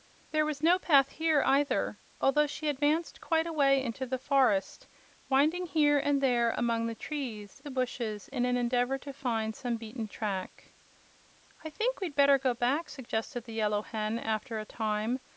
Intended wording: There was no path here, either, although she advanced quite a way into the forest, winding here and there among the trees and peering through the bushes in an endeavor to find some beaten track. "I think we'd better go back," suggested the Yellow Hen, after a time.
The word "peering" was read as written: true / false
false